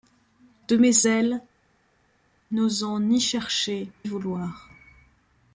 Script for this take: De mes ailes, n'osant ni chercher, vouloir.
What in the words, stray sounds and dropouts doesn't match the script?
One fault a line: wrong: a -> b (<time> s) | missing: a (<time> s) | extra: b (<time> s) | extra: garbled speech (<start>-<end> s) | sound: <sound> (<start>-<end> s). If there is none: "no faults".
no faults